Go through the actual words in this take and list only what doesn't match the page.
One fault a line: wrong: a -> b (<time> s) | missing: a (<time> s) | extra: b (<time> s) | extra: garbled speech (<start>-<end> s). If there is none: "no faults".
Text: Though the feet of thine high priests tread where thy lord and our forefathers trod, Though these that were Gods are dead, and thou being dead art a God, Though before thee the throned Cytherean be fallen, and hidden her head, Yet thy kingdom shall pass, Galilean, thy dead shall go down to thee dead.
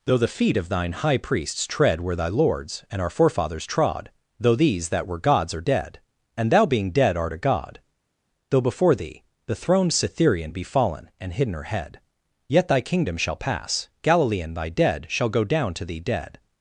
wrong: lord -> lords (2.3 s)